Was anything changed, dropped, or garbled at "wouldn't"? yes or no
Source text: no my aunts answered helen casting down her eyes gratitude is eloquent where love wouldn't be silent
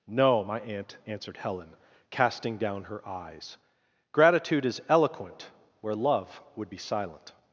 yes